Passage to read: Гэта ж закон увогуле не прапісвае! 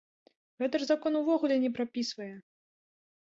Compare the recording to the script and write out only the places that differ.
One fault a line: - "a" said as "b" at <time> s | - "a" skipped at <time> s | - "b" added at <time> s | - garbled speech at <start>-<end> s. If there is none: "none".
none